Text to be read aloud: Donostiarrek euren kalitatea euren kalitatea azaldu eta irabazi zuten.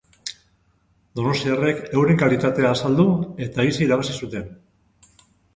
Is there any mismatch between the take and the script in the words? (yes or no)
yes